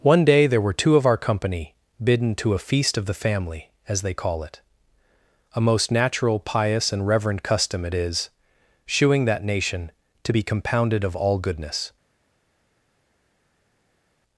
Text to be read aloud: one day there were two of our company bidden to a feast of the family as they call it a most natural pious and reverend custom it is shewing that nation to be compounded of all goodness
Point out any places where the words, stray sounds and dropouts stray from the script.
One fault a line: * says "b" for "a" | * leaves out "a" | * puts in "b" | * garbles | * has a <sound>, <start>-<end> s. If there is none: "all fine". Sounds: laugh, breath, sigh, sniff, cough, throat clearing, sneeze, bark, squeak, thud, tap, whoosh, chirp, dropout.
all fine